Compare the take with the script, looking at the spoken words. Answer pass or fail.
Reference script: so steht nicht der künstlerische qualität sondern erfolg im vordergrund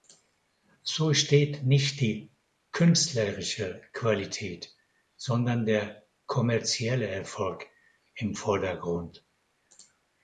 fail